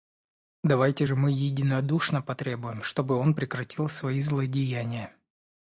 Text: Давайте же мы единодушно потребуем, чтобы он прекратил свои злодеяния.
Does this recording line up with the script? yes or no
yes